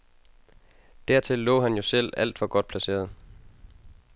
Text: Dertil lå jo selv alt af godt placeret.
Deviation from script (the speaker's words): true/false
true